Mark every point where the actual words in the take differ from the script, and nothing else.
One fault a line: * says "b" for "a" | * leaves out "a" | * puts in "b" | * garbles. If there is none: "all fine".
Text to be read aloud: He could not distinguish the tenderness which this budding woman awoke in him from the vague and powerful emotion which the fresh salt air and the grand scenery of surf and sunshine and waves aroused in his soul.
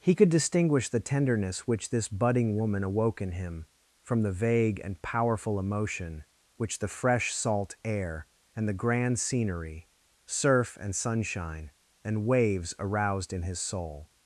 * leaves out "not"
* leaves out "of"